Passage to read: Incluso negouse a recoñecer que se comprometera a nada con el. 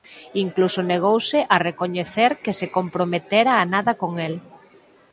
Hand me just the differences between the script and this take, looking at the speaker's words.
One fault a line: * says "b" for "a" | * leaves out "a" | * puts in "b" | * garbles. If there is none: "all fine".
all fine